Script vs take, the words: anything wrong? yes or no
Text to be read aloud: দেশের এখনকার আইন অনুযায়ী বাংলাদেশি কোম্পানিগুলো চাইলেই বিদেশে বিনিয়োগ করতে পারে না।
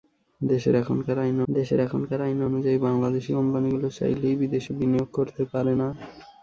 yes